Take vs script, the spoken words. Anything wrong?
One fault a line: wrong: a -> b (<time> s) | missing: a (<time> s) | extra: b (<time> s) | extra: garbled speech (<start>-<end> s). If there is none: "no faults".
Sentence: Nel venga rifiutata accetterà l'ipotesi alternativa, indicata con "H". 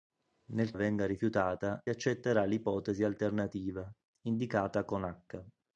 no faults